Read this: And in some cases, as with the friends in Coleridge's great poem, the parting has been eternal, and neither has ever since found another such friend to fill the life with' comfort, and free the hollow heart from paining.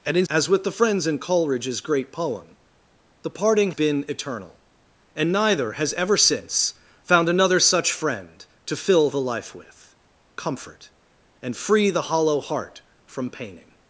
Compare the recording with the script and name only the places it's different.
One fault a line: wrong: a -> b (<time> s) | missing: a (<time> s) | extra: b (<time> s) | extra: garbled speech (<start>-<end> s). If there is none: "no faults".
missing: some cases (0.2 s)
missing: has (3.7 s)